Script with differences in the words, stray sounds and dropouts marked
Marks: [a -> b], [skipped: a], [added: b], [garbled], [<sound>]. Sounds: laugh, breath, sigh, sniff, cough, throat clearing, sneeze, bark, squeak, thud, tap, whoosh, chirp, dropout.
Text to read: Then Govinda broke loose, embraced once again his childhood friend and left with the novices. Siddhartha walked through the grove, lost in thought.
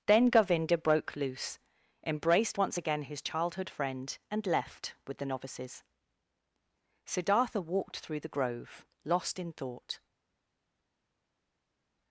Then Govinda broke loose, embraced once again his childhood friend and left with the novices. Siddhartha walked through the grove, lost in thought.